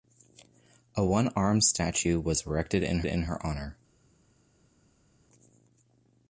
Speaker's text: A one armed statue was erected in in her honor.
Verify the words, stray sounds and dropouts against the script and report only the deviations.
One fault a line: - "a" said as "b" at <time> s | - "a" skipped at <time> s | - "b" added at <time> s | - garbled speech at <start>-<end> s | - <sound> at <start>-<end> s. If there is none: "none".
none